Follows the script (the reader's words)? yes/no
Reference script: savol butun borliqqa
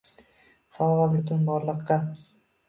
yes